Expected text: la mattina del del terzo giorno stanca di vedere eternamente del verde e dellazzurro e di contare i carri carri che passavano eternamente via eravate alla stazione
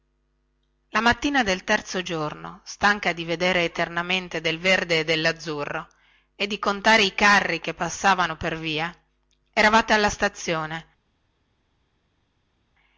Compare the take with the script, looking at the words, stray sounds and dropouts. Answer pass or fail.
fail